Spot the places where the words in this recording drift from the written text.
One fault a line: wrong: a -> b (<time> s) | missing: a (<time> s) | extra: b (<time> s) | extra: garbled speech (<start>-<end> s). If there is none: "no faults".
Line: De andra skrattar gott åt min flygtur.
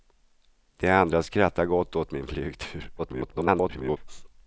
extra: garbled speech (3.0-4.0 s)